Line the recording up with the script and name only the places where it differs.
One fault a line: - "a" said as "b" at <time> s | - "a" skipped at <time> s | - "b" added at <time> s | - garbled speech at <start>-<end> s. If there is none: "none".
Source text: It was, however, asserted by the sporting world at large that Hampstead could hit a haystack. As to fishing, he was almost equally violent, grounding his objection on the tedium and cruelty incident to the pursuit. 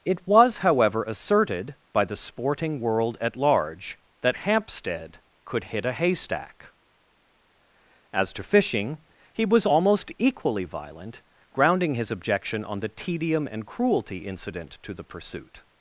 none